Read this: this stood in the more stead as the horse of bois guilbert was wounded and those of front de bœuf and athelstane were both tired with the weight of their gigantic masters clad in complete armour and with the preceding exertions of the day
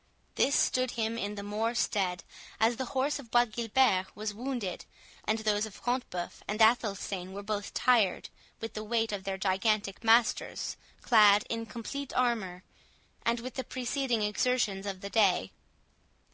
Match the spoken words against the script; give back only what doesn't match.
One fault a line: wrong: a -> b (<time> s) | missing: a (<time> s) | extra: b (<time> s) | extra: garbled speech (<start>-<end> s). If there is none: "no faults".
extra: him (0.9 s)